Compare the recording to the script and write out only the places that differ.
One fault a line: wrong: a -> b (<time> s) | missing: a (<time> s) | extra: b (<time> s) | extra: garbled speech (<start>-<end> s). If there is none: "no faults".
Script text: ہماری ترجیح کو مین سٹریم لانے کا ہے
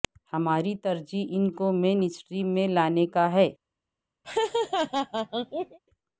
extra: ان (1.3 s)
extra: میں (2.5 s)